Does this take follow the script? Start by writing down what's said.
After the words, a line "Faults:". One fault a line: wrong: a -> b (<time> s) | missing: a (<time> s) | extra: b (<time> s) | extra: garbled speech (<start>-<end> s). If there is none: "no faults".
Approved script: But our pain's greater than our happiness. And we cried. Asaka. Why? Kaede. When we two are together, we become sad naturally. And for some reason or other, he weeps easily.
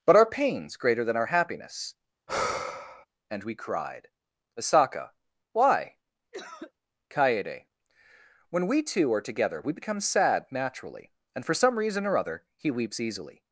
But our pain's greater than our happiness. And we cried. Asaka. Why? Kaede. When we two are together, we become sad naturally. And for some reason or other, he weeps easily.
Faults:
no faults